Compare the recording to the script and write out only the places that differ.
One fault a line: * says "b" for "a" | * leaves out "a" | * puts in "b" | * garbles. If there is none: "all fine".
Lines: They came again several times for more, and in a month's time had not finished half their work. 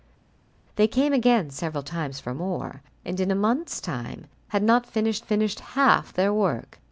* puts in "finished"